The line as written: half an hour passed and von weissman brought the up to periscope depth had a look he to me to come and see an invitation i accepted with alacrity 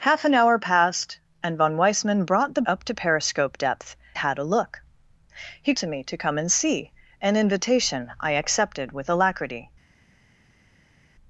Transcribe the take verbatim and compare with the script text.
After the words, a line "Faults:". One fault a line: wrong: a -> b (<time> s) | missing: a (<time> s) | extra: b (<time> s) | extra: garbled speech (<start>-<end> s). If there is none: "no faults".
half an hour passed and von weissman brought the up to periscope depth had a look he to me to come and see an invitation i accepted with alacrity
Faults:
no faults